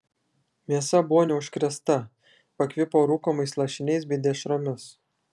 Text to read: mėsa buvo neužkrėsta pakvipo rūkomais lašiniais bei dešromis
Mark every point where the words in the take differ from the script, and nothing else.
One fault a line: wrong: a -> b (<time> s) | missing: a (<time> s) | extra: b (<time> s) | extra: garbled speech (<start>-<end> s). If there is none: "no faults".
no faults